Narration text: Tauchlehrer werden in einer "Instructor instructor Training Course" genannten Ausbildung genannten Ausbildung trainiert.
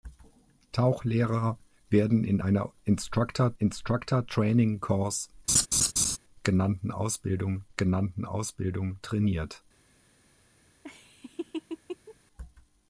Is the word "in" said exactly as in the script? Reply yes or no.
yes